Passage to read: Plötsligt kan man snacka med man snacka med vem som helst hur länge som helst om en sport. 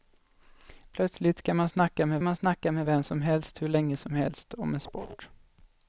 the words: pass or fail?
pass